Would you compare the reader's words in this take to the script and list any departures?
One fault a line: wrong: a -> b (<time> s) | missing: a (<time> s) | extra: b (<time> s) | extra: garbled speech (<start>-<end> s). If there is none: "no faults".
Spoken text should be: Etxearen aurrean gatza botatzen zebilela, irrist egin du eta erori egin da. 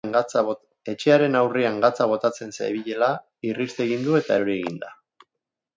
no faults